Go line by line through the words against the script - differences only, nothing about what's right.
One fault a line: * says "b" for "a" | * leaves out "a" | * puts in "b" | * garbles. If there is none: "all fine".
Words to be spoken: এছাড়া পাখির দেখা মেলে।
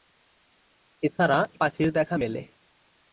all fine